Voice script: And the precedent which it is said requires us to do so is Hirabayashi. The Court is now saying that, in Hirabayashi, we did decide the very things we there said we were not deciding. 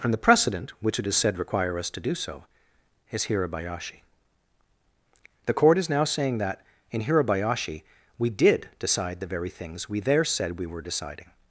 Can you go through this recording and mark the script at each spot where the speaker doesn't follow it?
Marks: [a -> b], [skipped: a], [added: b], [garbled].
And the precedent which it is said [requires -> require] us to do so is Hirabayashi. The Court is now saying that, in Hirabayashi, we did decide the very things we there said we were [skipped: not] deciding.